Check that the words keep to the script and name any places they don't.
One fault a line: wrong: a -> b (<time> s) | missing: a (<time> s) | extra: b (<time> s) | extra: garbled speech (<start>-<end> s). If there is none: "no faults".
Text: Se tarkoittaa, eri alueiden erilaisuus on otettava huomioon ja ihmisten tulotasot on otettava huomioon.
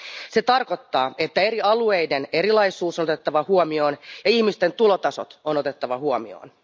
extra: että (1.2 s)